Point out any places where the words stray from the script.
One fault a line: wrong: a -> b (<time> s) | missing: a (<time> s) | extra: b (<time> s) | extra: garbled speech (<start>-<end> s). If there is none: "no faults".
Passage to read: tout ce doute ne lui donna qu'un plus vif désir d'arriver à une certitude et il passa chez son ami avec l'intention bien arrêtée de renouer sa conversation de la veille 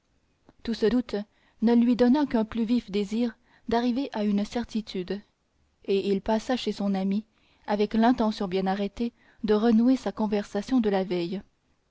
no faults